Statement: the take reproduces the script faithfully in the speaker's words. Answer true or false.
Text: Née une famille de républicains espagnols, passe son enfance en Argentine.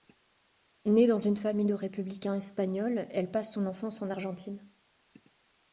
false